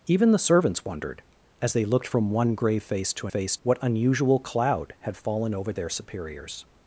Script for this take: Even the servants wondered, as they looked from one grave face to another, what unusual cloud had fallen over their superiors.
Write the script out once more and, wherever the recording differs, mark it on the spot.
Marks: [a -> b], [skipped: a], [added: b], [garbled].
Even the servants wondered, as they looked from one grave face to [another, -> face] what unusual cloud had fallen over their superiors.